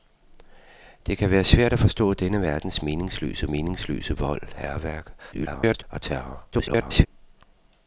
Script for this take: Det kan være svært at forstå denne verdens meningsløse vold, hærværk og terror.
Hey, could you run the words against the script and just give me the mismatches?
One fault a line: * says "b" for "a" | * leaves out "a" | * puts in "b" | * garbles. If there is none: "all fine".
* puts in "meningsløse"
* garbles
* garbles